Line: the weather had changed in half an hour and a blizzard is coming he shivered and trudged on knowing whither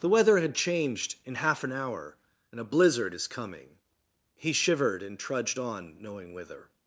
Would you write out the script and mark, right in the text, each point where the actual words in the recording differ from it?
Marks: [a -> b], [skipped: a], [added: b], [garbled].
the weather had changed in half an hour and a blizzard is coming he shivered and trudged on knowing whither